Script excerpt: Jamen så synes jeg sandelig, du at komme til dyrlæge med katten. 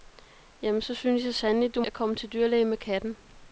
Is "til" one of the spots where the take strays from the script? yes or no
no